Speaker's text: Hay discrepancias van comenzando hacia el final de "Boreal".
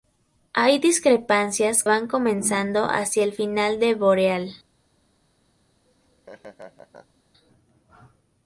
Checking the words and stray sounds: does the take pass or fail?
fail